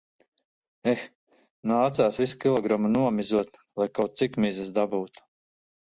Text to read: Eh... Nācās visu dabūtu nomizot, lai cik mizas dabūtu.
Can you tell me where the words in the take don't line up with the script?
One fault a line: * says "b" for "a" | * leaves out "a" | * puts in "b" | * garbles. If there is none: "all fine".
* says "kilogramu" for "dabūtu"
* puts in "kaut"